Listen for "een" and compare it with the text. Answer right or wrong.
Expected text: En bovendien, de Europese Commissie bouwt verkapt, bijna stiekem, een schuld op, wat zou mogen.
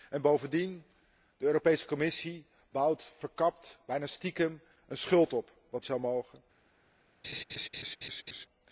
right